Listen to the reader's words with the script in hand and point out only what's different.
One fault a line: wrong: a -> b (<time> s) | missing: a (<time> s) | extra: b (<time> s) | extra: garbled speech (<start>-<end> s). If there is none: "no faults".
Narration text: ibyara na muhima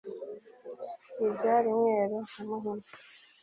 extra: mweru (1.8 s)